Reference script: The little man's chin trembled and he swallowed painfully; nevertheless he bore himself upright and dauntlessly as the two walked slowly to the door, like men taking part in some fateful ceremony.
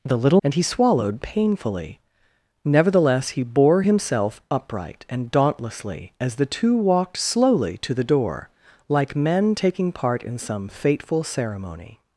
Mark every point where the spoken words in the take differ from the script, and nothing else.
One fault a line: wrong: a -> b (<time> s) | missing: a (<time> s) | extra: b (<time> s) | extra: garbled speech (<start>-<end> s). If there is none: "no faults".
missing: man's chin trembled (0.4 s)